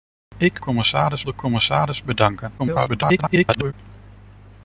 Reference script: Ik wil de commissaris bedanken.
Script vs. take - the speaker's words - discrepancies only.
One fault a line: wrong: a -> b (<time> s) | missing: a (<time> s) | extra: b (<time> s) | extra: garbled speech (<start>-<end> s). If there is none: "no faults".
wrong: wil -> commissaris (0.6 s)
extra: garbled speech (2.6-3.7 s)